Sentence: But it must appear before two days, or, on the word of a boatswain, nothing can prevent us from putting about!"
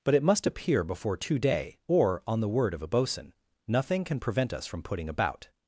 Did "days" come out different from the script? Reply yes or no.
yes